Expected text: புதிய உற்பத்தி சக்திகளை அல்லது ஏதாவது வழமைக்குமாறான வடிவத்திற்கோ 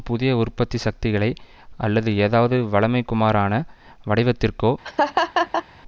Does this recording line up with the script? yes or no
yes